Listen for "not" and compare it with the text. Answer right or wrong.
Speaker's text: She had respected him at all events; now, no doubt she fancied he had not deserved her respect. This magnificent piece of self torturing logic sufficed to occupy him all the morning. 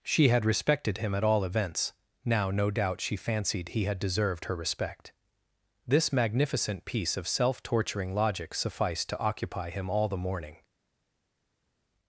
wrong